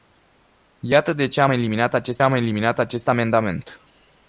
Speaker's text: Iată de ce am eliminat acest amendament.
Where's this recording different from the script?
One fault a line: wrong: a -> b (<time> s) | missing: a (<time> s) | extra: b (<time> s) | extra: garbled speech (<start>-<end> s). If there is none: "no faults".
extra: am eliminat acest (2.2 s)